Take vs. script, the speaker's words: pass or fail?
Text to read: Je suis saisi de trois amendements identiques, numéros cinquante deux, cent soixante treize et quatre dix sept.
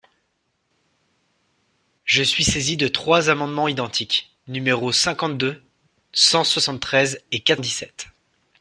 pass